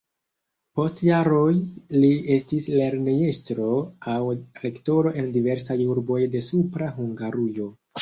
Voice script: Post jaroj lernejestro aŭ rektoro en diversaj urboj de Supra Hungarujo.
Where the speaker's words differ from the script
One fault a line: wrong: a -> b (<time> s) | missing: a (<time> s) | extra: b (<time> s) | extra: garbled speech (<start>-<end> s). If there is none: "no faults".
extra: li estis (2.0 s)